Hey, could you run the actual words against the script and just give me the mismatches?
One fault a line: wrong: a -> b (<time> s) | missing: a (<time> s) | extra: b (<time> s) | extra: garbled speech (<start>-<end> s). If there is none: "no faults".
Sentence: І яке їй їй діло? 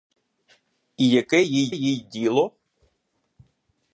no faults